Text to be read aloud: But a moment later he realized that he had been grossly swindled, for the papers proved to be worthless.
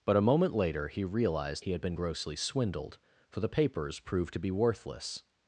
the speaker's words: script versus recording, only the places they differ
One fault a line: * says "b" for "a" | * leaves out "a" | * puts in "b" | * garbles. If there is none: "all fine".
* leaves out "that"